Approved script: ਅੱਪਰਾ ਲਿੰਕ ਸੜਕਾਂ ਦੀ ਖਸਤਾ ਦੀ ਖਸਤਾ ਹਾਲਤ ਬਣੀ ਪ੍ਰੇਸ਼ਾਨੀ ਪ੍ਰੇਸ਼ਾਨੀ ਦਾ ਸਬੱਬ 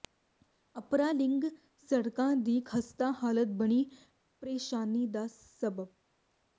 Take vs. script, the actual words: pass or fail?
fail